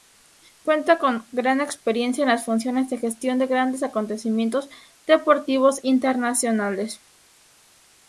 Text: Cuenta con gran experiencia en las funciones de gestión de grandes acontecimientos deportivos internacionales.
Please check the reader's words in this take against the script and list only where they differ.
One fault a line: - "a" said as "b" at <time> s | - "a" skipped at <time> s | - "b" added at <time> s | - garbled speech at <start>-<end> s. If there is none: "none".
none